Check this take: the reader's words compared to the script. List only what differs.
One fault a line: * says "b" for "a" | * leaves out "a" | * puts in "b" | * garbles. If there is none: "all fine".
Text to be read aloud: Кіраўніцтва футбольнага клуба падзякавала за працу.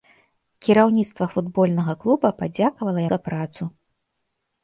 all fine